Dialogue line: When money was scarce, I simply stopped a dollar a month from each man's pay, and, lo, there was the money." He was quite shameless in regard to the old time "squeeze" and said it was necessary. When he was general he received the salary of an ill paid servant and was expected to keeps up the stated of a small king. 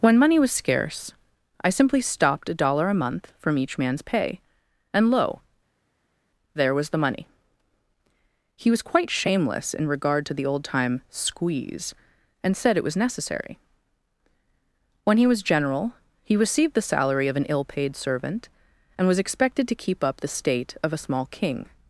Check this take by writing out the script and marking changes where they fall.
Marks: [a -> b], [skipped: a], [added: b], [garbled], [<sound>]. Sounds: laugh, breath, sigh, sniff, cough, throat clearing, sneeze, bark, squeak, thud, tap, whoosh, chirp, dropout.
When money was scarce, I simply stopped a dollar a month from each man's pay, and, lo, there was the money." He was quite shameless in regard to the old time "squeeze" and said it was necessary. When he was general he received the salary of an ill paid servant and was expected to [keeps -> keep] up the [stated -> state] of a small king.